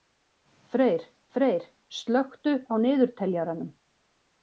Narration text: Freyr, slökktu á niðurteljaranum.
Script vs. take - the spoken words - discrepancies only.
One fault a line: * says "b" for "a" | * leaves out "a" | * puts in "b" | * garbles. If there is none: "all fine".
* puts in "freyr"